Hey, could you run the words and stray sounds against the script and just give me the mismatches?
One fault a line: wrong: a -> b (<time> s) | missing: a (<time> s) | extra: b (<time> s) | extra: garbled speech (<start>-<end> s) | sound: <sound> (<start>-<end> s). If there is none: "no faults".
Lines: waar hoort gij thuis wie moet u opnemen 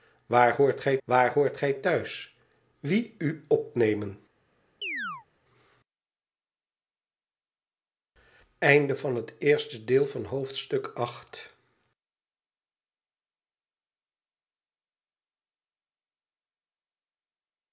extra: waar hoort gij (1.0 s)
missing: moet (3.2 s)
sound: chirp (4.8-5.3 s)